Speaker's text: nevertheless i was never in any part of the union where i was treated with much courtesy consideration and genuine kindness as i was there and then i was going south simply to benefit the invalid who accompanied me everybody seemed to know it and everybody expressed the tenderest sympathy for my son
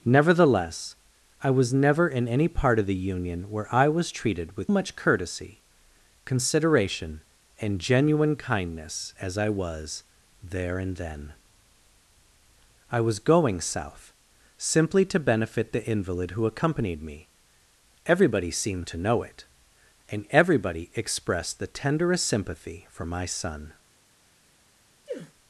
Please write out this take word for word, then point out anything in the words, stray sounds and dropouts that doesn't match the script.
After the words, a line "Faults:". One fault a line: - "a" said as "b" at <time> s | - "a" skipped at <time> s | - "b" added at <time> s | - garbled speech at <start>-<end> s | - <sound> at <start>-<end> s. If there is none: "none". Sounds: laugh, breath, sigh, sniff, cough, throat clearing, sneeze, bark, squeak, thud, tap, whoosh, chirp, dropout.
nevertheless i was never in any part of the union where i was treated with much courtesy consideration and genuine kindness as i was there and then i was going south simply to benefit the invalid who accompanied me everybody seemed to know it and everybody expressed the tenderest sympathy for my son
Faults:
- sneeze at 25.1-25.3 s